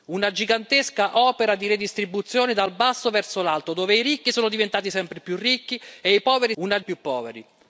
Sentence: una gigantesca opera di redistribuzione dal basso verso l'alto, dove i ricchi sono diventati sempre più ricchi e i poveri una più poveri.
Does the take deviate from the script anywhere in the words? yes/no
no